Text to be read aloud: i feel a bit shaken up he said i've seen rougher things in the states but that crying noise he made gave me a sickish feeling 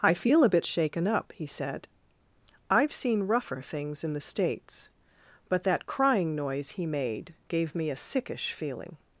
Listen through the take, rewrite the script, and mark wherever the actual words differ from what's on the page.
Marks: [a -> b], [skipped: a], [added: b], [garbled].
i feel a bit shaken up he said i've seen rougher things in the states but that crying noise he made gave me a sickish feeling